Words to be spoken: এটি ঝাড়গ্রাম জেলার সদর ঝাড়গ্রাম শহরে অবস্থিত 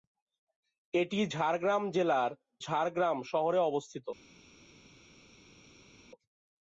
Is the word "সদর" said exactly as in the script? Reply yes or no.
no